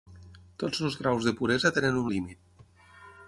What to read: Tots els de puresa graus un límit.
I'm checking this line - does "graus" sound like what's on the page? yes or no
no